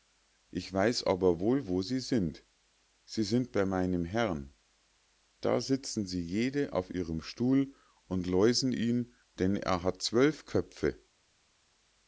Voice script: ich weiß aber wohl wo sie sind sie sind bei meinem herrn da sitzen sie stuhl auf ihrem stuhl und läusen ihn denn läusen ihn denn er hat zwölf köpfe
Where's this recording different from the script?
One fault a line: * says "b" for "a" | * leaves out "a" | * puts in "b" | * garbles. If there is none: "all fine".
* says "jede" for "stuhl"
* leaves out "läusen ihn denn"